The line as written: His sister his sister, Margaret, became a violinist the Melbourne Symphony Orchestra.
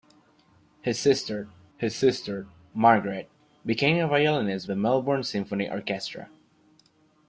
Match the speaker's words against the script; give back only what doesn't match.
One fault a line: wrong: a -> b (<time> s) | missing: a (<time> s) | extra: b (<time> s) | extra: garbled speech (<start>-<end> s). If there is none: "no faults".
no faults